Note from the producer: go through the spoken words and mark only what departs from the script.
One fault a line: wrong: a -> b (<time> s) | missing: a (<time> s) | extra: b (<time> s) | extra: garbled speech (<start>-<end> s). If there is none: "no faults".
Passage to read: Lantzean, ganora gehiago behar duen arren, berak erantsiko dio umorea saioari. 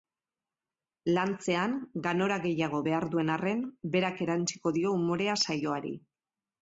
no faults